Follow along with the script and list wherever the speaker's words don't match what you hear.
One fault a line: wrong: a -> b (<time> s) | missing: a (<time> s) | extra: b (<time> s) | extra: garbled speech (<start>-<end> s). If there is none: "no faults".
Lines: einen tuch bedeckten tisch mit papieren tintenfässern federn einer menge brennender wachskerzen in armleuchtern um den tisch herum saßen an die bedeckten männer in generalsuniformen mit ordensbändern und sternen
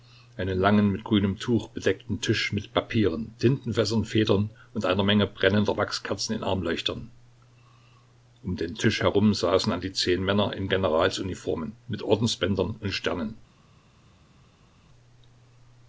extra: langen mit grünem (0.6 s)
extra: und (4.7 s)
wrong: bedeckten -> zehn (9.9 s)